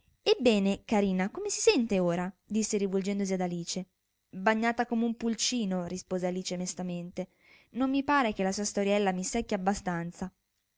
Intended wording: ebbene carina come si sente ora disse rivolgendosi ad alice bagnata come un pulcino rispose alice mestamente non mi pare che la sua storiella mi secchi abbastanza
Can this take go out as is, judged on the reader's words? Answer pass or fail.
pass